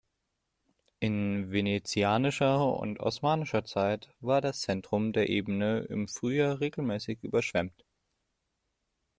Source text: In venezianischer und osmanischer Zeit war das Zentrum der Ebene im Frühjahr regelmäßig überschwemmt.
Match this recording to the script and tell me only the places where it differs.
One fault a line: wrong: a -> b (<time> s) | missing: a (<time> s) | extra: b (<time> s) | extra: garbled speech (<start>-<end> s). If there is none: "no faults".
no faults